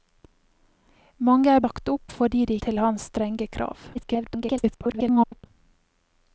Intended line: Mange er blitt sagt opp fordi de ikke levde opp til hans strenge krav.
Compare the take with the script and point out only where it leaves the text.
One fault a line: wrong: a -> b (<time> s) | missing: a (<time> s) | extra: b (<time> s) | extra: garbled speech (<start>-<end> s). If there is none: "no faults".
missing: blitt (1.6 s)
missing: ikke levde opp (2.6 s)
extra: garbled speech (3.9-5.5 s)